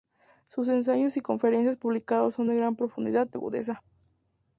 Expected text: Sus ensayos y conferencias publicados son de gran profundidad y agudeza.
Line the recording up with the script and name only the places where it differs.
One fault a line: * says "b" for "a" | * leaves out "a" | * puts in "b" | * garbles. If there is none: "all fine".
* leaves out "y"